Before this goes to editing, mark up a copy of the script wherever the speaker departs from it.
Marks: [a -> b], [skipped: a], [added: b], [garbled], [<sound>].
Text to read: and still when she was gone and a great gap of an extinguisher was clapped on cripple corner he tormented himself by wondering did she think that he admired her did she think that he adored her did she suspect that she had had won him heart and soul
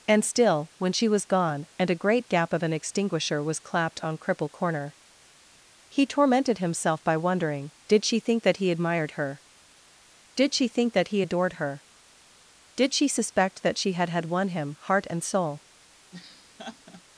and still when she was gone and a great gap of an extinguisher was clapped on cripple corner he tormented himself by wondering did she think that he admired her did she think that he adored her did she suspect that she had had won him heart and soul [laugh]